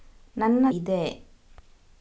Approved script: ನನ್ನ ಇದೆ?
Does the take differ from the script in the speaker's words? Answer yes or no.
no